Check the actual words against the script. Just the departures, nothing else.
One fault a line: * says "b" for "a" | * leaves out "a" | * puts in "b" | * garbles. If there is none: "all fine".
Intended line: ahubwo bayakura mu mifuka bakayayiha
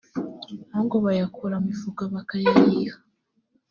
* leaves out "mu"